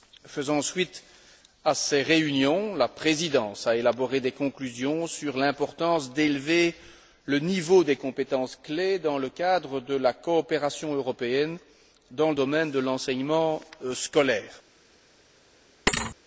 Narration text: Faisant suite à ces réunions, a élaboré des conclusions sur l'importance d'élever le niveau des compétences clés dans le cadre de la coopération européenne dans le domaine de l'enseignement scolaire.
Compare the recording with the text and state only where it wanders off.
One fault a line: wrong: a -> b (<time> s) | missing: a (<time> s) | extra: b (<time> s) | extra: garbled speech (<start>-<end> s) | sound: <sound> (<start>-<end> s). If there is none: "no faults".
extra: la Présidence (2.8 s)
sound: thud (15.9-16.2 s)